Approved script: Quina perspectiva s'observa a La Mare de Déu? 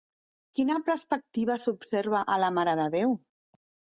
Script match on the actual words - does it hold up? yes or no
yes